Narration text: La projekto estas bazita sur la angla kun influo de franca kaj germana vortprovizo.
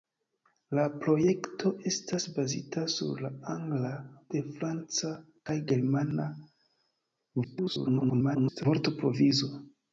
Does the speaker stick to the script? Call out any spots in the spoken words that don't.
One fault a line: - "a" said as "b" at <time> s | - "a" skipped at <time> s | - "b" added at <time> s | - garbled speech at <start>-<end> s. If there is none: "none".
- "kun influo" skipped at 3.9 s
- garbled speech at 7.4-8.7 s